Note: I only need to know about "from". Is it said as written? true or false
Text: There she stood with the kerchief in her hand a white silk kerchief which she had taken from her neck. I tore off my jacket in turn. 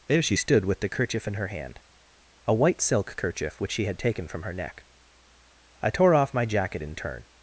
true